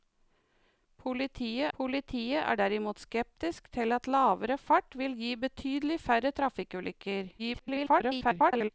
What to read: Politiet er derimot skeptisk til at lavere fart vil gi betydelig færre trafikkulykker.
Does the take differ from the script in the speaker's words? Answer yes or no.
yes